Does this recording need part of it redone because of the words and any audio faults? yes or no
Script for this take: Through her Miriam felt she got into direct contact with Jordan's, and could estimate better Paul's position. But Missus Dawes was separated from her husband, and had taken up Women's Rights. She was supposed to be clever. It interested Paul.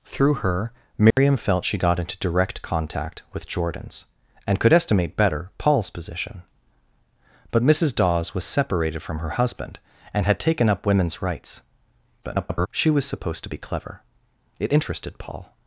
yes